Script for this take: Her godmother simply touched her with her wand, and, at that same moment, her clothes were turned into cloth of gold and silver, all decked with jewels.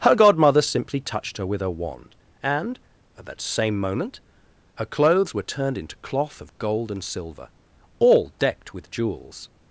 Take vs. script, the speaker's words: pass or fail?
pass